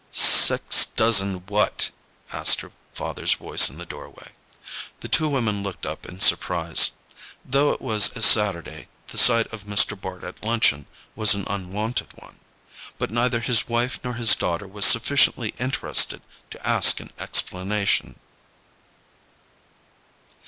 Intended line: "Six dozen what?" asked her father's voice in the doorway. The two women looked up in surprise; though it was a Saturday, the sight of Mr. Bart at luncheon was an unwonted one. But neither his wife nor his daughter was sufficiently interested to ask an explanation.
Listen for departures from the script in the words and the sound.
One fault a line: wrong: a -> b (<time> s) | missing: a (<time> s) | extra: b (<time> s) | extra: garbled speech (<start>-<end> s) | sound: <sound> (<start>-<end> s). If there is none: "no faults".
no faults